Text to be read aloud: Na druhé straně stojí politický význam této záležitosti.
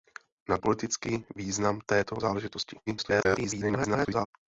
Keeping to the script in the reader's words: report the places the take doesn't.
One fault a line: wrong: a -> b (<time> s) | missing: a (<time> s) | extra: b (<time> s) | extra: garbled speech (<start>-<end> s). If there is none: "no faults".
missing: druhé straně stojí (0.6 s)
extra: garbled speech (2.9-4.3 s)